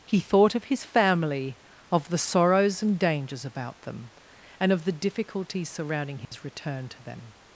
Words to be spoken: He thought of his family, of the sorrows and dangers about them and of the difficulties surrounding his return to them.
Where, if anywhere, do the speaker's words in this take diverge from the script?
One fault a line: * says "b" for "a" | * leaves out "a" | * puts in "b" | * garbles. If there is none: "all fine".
all fine